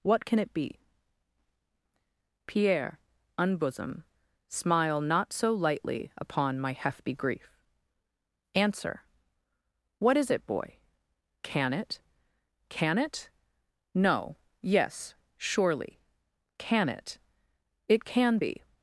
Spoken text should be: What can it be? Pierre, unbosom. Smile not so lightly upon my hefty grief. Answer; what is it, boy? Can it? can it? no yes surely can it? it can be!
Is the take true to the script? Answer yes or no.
yes